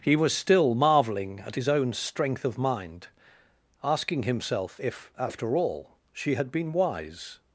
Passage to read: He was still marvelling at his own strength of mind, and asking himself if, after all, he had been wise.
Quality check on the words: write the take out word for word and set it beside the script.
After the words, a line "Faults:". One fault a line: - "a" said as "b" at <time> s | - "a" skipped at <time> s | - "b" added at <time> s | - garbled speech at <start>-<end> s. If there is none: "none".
He was still marvelling at his own strength of mind, asking himself if, after all, she had been wise.
Faults:
- "and" skipped at 3.1 s
- "he" said as "she" at 6.1 s